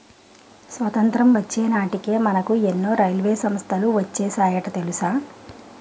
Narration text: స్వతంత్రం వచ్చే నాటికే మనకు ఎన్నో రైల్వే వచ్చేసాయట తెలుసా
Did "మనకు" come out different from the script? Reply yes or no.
no